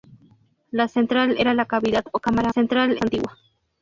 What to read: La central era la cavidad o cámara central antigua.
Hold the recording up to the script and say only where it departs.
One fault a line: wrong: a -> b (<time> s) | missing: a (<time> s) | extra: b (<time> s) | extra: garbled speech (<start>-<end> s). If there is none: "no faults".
no faults